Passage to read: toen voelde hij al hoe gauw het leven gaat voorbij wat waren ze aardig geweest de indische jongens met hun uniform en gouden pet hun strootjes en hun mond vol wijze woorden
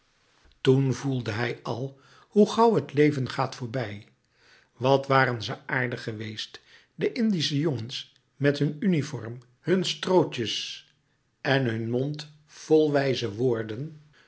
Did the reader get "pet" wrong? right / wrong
wrong